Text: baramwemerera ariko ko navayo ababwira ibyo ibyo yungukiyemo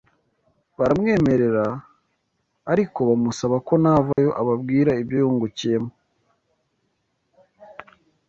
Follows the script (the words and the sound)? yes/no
no